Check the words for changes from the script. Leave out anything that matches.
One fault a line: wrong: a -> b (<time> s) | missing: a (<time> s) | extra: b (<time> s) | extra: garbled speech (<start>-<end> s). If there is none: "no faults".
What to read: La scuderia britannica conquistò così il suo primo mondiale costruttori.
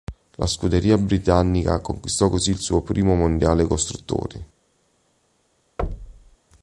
no faults